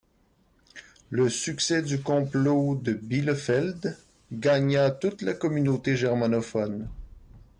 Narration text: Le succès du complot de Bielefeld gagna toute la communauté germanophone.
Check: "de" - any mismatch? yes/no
no